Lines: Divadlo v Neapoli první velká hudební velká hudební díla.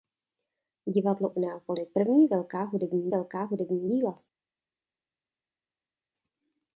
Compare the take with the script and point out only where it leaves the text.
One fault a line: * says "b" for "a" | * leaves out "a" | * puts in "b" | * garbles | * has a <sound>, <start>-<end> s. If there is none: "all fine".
all fine